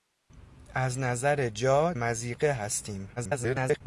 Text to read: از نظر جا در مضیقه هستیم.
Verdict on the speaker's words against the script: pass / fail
fail